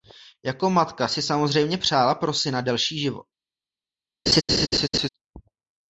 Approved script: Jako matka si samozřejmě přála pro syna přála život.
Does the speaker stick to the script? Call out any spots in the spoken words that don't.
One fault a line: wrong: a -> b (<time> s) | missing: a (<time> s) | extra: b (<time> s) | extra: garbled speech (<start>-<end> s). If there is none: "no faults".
wrong: přála -> delší (2.6 s)